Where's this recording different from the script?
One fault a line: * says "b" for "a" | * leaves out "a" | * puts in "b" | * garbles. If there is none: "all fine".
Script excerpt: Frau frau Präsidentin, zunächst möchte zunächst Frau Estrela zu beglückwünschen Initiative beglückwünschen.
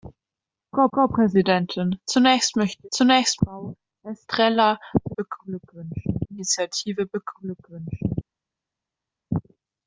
all fine